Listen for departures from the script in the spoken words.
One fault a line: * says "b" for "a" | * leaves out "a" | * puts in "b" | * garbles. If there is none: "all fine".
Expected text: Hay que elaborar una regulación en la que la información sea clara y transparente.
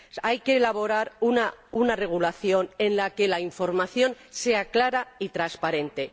all fine